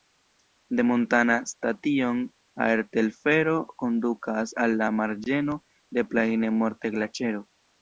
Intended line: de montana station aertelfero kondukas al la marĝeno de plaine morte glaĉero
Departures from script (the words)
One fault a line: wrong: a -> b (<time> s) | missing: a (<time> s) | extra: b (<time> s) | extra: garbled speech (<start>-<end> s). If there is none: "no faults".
no faults